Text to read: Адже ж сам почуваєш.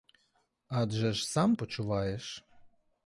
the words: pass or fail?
pass